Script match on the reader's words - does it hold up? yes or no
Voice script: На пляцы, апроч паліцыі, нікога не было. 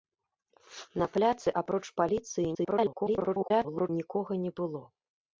no